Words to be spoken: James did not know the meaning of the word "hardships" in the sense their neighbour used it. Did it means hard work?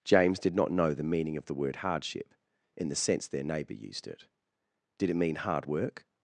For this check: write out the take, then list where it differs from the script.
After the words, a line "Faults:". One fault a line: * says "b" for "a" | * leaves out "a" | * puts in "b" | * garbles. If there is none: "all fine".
James did not know the meaning of the word "hardship" in the sense their neighbour used it. Did it mean hard work?
Faults:
* says "hardship" for "hardships"
* says "mean" for "means"